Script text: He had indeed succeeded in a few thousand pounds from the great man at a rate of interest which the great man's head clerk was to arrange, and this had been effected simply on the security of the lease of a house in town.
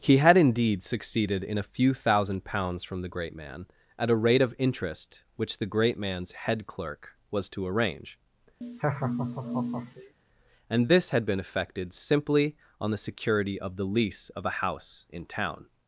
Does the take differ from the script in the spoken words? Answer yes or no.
no